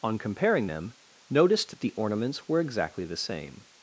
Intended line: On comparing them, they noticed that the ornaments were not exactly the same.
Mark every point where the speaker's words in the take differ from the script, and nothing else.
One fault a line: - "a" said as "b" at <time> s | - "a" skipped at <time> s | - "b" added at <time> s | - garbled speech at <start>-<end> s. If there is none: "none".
- "they" skipped at 0.9 s
- "not" skipped at 2.6 s